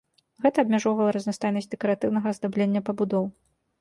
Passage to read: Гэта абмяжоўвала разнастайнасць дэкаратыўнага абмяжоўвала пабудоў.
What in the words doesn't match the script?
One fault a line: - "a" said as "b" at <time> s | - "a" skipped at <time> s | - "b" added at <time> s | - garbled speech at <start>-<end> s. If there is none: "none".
- "абмяжоўвала" said as "аздаблення" at 2.3 s